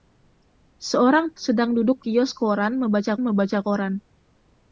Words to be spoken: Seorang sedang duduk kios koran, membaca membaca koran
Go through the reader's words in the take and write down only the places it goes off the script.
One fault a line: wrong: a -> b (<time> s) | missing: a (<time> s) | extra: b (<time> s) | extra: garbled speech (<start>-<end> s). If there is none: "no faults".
no faults